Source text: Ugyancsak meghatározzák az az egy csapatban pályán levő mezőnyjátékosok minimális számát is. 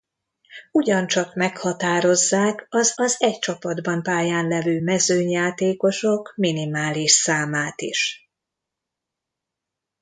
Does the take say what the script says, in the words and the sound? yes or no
yes